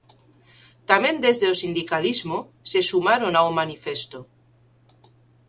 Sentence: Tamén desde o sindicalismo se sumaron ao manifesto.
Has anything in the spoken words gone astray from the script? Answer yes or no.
no